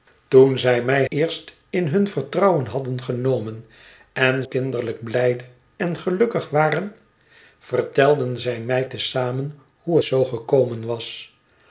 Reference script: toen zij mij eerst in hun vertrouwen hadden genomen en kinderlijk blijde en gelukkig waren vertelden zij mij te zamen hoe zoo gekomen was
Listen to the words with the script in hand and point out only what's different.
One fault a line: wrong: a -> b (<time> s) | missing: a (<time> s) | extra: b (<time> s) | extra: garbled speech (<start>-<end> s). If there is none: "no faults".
no faults